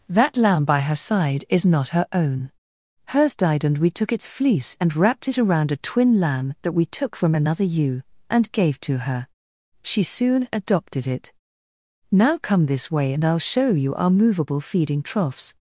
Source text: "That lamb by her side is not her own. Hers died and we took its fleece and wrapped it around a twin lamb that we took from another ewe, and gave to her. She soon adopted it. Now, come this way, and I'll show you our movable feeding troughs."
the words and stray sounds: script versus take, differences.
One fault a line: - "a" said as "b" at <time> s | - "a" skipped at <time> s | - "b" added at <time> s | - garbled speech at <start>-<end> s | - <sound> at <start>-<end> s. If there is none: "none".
none